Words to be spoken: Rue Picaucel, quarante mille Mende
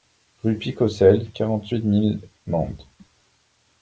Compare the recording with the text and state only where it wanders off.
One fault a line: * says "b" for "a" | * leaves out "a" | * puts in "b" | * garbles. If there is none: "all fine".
* puts in "huit"